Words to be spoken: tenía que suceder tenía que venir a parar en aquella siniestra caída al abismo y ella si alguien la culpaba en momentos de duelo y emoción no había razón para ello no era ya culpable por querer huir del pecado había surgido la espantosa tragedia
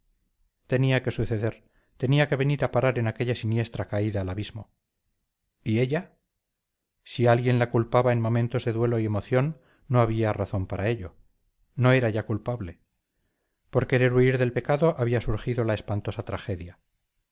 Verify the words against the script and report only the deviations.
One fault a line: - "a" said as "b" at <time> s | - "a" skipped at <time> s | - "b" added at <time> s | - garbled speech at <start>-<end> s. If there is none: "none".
none